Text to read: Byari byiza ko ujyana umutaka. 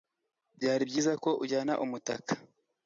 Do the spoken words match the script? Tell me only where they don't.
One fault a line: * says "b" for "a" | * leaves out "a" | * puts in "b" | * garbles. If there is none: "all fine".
all fine